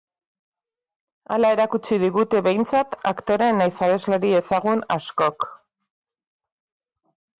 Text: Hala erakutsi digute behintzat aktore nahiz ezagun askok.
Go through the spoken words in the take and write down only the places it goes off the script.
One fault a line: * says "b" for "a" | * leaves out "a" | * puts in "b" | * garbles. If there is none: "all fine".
* puts in "abeslari"